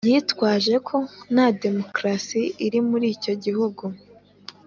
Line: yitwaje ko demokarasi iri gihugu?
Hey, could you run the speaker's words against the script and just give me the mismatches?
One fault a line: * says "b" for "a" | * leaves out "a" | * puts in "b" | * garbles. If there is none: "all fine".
* puts in "nta"
* puts in "muri icyo"